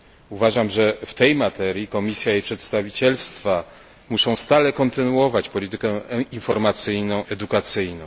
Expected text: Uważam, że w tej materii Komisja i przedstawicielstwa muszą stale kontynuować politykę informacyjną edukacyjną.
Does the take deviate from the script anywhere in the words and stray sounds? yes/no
no